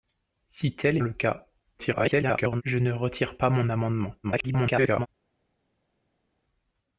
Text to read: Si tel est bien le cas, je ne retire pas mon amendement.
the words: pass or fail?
fail